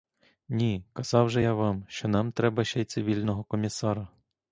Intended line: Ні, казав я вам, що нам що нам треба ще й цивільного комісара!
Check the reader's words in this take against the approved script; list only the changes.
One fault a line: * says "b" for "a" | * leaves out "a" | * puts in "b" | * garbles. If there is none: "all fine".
* puts in "же"
* leaves out "що нам"